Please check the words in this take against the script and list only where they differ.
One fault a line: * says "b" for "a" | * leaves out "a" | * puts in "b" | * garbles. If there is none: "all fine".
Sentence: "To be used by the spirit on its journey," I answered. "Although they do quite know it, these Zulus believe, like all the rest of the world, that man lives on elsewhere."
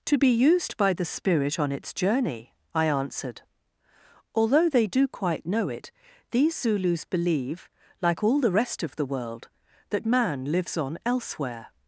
all fine